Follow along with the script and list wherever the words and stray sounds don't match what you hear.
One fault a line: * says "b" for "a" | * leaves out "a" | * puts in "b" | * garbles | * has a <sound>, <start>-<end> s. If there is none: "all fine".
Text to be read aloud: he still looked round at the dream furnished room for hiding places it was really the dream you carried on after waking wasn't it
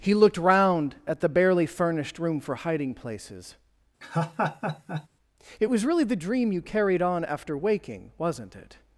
* leaves out "still"
* says "barely" for "dream"
* has a laugh, 4.0-5.1 s